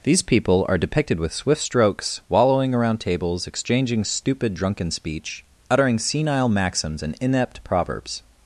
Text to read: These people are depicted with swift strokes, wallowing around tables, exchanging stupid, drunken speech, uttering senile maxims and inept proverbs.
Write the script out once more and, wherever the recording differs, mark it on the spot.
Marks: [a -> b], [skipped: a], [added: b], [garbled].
These people are depicted with swift strokes, wallowing around tables, exchanging stupid, drunken speech, uttering senile maxims and inept proverbs.